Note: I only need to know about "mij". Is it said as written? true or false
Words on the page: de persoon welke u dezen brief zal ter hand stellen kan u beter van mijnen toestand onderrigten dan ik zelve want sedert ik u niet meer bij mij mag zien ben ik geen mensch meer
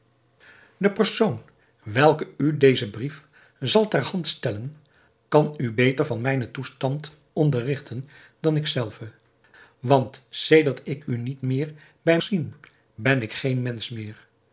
false